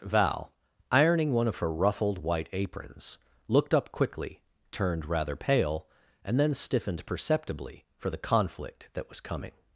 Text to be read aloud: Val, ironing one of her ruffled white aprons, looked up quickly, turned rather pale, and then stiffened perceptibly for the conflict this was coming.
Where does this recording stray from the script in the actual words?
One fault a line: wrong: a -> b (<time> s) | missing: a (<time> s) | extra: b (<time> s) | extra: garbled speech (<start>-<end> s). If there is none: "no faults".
wrong: this -> that (8.9 s)